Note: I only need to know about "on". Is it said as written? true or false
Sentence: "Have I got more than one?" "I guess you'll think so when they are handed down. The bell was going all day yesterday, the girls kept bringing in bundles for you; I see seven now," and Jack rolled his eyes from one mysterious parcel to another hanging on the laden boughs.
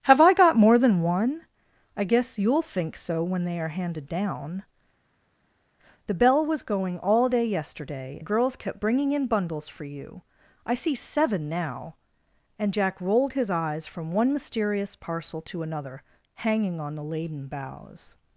true